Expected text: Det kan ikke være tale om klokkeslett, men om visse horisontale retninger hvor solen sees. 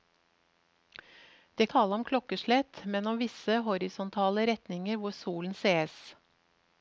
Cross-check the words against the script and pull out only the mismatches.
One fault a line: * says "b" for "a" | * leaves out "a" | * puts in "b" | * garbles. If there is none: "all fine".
* leaves out "kan ikke være"